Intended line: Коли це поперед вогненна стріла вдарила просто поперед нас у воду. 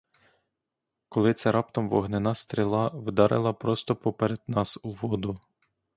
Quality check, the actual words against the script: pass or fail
fail